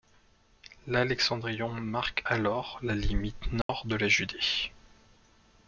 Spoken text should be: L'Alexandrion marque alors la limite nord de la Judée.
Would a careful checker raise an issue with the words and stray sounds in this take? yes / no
yes